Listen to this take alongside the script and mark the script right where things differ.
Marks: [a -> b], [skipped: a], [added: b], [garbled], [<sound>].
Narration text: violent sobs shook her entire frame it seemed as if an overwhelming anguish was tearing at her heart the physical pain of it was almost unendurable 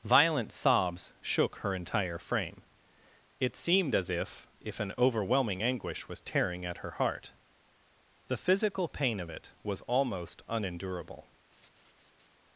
violent sobs shook her entire frame it seemed as if [added: if] an overwhelming anguish was tearing at her heart the physical pain of it was almost unendurable [laugh]